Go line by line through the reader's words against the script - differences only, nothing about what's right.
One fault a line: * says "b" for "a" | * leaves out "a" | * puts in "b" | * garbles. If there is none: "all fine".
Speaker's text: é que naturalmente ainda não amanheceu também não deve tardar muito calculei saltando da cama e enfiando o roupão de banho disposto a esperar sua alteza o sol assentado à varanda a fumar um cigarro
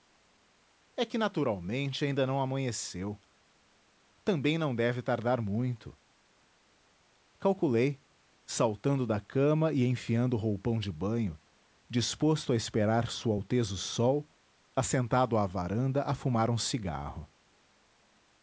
all fine